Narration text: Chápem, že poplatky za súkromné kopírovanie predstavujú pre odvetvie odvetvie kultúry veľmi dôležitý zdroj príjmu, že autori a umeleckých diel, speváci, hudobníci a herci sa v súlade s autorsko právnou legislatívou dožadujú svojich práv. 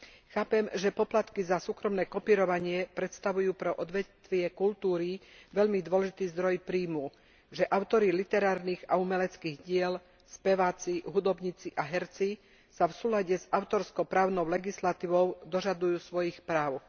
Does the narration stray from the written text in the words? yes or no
yes